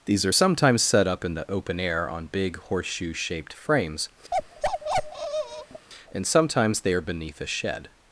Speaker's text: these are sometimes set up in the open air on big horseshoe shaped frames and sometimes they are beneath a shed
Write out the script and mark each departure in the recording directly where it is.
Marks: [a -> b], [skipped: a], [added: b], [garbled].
these are sometimes set up in the open air on big horseshoe shaped frames and sometimes they are beneath a shed